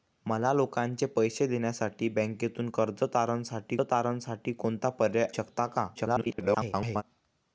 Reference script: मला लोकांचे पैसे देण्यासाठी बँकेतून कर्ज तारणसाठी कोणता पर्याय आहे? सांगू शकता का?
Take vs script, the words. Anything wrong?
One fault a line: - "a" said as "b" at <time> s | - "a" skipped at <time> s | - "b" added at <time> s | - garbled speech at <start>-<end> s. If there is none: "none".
- "तारणसाठी" added at 3.8 s
- "आहे सांगू" skipped at 5.3 s
- garbled speech at 5.9-7.0 s